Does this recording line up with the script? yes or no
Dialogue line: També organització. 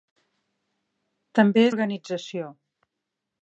yes